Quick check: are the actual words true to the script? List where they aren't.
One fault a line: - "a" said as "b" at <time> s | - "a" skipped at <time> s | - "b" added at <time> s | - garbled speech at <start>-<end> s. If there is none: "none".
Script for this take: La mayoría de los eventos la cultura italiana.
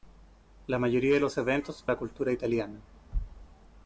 none